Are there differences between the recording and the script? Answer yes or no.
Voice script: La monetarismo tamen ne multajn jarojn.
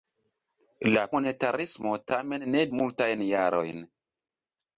no